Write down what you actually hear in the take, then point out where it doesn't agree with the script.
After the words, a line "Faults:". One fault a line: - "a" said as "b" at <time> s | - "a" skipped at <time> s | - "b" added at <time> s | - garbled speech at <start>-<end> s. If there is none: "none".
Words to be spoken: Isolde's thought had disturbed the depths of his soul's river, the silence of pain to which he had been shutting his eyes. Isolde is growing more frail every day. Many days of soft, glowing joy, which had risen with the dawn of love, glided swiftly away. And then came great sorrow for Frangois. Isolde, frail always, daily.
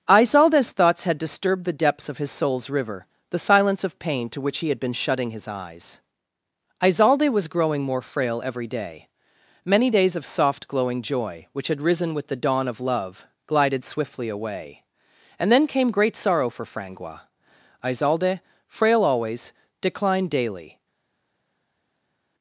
Isolde's thoughts had disturbed the depths of his soul's river, the silence of pain to which he had been shutting his eyes. Isolde was growing more frail every day. Many days of soft, glowing joy, which had risen with the dawn of love, glided swiftly away. And then came great sorrow for Frangois. Isolde, frail always, declined daily.
Faults:
- "thought" said as "thoughts" at 0.7 s
- "is" said as "was" at 7.3 s
- "declined" added at 19.8 s